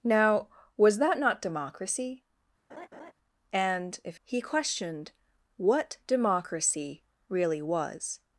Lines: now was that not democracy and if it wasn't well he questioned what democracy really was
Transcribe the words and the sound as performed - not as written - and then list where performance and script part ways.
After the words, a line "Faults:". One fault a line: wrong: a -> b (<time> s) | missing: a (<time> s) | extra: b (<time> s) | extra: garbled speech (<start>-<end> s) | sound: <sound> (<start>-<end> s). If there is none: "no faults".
now was that not democracy and if he questioned what democracy really was
Faults:
sound: laugh (2.7-3.1 s)
missing: it wasn't well (4.2 s)